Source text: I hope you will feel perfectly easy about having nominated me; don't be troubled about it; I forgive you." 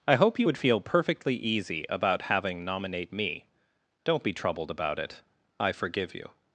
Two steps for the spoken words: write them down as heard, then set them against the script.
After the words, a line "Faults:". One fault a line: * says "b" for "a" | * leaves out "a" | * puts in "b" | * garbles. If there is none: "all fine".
I hope you would feel perfectly easy about having nominate me; don't be troubled about it; I forgive you."
Faults:
* says "would" for "will"
* says "nominate" for "nominated"